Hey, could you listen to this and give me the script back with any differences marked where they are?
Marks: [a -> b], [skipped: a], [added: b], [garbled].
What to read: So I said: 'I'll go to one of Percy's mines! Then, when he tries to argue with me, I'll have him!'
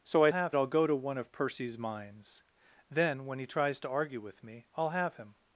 So I [said: -> have] 'I'll go to one of Percy's mines! Then, when he tries to argue with me, I'll have him!'